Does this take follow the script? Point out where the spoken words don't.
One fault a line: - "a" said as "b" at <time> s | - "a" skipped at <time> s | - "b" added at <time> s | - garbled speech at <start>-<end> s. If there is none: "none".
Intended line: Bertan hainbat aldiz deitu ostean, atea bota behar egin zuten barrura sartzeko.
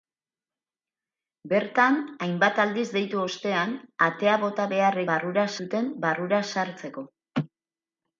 - "egin" said as "barrura" at 5.1 s